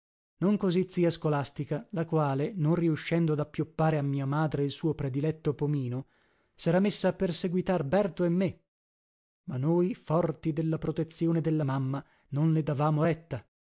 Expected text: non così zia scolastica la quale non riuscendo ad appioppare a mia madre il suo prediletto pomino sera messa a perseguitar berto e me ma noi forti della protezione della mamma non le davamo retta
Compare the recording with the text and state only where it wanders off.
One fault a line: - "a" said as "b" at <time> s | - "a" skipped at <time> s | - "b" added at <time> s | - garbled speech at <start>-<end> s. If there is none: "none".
none